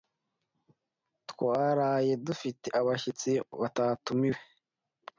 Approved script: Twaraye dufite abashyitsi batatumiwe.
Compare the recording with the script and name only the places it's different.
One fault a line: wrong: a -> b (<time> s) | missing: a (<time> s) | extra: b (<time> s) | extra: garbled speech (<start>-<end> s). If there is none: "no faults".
no faults